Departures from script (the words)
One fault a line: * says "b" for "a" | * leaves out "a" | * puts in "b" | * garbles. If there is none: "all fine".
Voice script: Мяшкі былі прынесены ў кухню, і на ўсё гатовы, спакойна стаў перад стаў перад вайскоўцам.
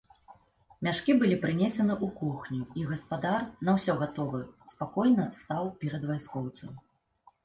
* puts in "гаспадар"
* leaves out "стаў перад"